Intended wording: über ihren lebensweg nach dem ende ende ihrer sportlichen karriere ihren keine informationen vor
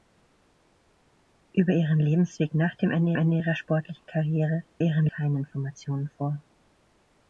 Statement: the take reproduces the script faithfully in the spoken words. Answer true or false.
true